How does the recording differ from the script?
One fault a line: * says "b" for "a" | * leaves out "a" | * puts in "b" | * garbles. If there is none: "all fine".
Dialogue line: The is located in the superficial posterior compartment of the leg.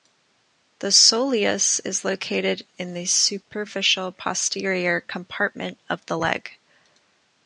* puts in "soleus"